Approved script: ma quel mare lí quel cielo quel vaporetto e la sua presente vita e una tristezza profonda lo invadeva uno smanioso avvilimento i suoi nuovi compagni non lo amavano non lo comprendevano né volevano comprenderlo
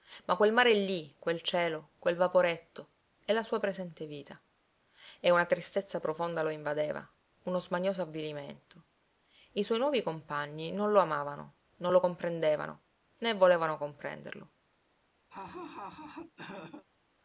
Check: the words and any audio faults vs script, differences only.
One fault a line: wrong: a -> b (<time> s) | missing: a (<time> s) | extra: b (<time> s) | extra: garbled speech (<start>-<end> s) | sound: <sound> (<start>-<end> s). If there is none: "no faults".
sound: laugh (15.3-16.9 s)